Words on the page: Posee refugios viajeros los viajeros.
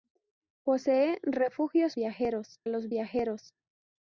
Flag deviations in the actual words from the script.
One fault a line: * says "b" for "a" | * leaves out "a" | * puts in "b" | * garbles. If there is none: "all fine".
all fine